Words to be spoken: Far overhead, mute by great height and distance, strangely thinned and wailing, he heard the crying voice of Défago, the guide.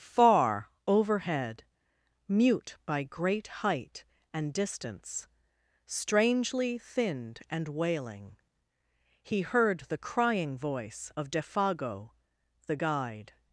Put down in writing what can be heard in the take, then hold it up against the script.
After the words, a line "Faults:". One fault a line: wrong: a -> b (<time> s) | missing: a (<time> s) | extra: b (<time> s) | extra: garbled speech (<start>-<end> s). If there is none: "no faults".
Far overhead, mute by great height and distance, strangely thinned and wailing, he heard the crying voice of Défago, the guide.
Faults:
no faults